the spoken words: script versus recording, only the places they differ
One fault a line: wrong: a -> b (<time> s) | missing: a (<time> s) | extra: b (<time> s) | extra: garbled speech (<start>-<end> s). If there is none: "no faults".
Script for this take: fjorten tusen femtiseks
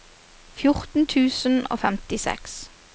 extra: og (1.7 s)